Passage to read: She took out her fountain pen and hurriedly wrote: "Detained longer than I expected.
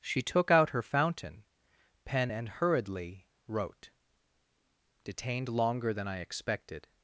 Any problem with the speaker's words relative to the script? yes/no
no